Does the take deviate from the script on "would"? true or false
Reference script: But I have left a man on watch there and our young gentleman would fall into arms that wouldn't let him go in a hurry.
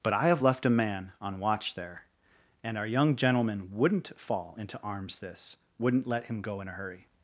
true